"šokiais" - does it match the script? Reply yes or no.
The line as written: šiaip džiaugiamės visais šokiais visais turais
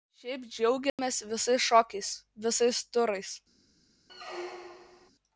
yes